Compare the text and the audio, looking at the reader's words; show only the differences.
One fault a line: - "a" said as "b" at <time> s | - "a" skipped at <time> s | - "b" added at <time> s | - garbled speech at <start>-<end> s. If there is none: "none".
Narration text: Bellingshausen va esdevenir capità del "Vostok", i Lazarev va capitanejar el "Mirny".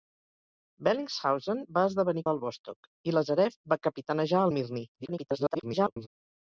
- "capità" skipped at 2.2 s
- garbled speech at 4.9-6.1 s